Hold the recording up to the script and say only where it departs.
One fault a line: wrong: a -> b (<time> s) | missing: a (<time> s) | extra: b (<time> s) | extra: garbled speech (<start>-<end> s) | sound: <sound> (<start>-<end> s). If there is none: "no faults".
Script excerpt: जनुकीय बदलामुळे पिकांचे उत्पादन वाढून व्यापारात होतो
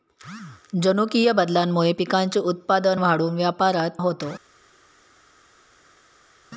no faults